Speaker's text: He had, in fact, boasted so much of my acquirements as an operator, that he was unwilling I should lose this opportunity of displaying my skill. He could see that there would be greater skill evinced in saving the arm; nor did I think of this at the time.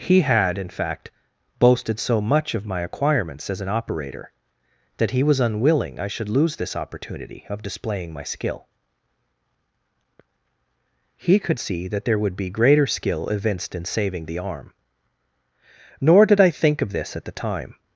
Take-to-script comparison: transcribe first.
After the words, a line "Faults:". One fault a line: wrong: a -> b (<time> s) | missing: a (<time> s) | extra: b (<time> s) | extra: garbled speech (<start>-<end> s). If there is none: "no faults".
He had, in fact, boasted so much of my acquirements as an operator, that he was unwilling I should lose this opportunity of displaying my skill. He could see that there would be greater skill evinced in saving the arm; nor did I think of this at the time.
Faults:
no faults